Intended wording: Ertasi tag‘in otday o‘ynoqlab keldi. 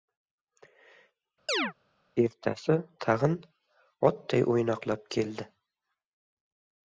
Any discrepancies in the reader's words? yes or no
no